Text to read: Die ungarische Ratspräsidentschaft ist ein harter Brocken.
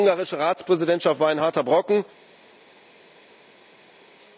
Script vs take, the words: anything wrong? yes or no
yes